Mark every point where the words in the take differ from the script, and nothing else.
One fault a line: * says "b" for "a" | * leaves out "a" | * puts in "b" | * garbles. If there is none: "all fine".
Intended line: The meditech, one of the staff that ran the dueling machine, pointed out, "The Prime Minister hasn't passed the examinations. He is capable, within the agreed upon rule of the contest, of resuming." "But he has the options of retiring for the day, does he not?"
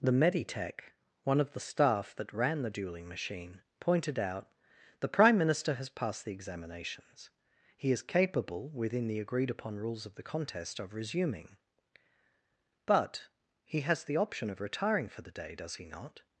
* says "has" for "hasn't"
* says "rules" for "rule"
* says "option" for "options"